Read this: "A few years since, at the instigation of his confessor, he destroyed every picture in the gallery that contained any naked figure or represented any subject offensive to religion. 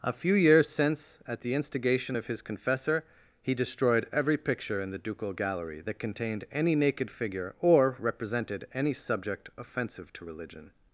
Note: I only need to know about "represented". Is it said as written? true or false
true